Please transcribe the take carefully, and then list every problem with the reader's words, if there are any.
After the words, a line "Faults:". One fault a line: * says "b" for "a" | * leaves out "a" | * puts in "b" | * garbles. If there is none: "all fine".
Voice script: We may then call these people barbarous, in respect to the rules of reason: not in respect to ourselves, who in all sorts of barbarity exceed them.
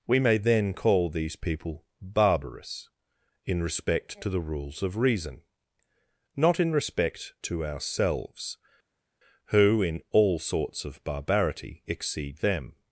We may then call these people barbarous, in respect to the rules of reason: not in respect to ourselves, who in all sorts of barbarity exceed them.
Faults:
all fine